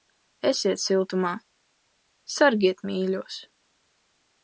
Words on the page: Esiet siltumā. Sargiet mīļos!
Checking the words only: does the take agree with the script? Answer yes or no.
yes